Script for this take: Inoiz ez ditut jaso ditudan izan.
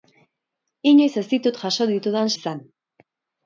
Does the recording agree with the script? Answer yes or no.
yes